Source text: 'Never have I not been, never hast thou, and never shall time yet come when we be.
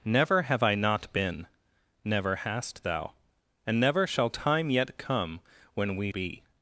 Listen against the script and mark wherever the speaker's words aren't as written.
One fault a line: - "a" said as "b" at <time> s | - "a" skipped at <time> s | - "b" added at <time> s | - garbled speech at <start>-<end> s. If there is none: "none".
none